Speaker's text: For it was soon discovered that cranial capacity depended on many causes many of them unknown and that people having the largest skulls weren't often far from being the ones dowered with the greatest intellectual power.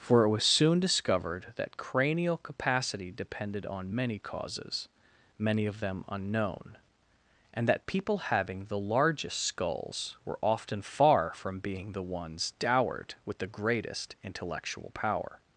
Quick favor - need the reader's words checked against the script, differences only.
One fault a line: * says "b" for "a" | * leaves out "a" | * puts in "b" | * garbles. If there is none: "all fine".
* says "were" for "weren't"